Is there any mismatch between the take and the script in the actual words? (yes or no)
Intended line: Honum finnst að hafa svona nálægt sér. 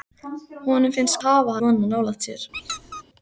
no